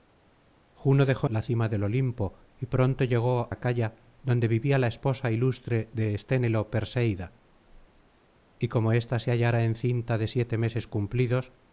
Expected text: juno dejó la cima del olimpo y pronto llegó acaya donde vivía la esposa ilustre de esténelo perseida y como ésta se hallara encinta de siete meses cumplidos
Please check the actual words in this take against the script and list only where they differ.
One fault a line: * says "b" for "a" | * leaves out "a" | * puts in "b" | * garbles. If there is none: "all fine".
all fine